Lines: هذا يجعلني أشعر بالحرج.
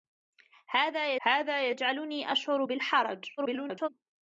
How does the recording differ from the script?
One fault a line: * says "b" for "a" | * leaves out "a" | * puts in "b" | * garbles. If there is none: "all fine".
* puts in "هذا"
* garbles